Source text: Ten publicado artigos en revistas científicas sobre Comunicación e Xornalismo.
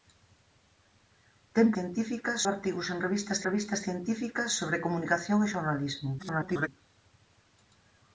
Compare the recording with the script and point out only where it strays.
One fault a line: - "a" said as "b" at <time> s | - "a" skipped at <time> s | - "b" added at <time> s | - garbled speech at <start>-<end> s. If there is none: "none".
- "publicado" said as "científicas" at 1.7 s
- "revistas" added at 3.5 s
- garbled speech at 6.2-6.7 s